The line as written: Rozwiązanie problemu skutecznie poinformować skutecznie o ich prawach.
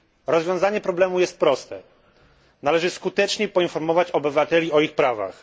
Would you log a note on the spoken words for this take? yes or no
yes